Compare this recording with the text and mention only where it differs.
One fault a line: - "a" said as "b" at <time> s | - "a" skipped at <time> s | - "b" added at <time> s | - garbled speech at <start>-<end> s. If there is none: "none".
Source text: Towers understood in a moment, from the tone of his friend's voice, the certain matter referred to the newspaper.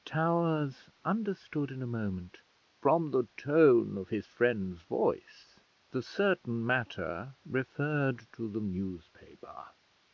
none